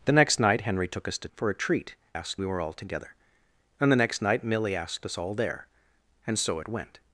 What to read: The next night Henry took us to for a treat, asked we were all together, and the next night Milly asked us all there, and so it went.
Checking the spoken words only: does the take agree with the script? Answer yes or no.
yes